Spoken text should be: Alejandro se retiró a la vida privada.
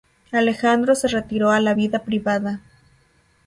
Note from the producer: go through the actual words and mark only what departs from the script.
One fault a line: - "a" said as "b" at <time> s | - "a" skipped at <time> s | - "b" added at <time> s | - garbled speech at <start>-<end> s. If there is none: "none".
none